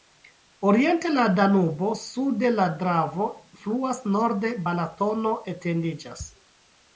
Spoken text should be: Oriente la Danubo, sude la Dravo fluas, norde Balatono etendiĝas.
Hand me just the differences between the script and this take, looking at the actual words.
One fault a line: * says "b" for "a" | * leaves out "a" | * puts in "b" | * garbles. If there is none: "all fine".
all fine